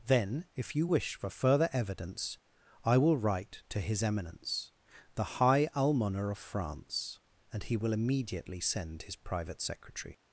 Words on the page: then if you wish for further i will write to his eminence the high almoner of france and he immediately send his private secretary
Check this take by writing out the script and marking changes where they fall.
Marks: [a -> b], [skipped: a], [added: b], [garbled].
then if you wish for further [added: evidence] i will write to his eminence the high almoner of france and he [added: will] immediately send his private secretary